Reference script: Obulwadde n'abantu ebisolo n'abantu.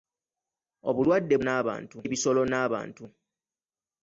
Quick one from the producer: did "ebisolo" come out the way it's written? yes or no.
yes